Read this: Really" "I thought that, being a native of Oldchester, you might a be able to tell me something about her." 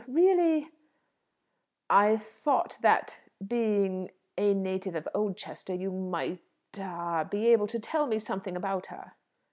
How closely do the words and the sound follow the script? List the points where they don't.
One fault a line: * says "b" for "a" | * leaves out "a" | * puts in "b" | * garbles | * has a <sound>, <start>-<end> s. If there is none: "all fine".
all fine